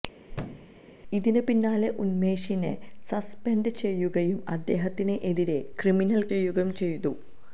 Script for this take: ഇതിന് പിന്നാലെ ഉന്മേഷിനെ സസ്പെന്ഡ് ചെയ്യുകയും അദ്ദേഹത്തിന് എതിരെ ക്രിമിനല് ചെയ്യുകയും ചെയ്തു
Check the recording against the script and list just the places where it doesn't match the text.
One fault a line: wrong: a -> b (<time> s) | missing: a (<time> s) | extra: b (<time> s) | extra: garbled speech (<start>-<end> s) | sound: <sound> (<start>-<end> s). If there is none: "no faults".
sound: thud (0.3-0.8 s)